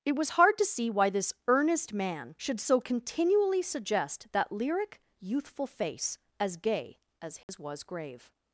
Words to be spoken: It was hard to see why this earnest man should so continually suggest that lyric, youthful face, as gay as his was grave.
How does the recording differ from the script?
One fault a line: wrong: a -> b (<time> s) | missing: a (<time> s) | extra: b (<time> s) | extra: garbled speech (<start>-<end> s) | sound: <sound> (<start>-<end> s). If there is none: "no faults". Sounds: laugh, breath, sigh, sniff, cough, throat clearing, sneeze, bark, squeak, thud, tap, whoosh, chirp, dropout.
sound: dropout (7.4-7.5 s)